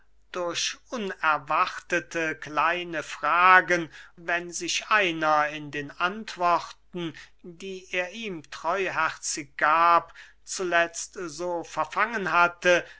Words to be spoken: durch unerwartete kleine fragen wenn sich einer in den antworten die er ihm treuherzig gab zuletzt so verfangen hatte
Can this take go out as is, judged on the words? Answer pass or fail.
pass